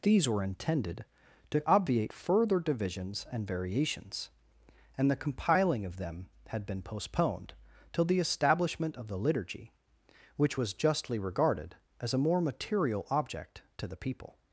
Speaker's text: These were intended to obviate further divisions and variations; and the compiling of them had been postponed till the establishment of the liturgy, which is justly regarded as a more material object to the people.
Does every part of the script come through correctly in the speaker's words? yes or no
no